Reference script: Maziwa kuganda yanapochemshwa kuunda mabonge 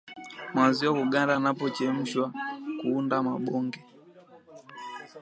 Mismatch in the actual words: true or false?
false